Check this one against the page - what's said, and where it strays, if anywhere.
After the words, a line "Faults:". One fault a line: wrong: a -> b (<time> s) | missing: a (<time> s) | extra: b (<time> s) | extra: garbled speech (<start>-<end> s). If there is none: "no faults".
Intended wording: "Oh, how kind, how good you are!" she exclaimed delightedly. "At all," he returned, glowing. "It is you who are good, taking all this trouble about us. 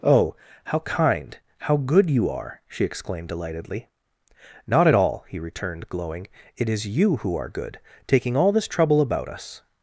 "Oh, how kind, how good you are!" she exclaimed delightedly. "Not at all," he returned, glowing. "It is you who are good, taking all this trouble about us.
Faults:
extra: Not (4.7 s)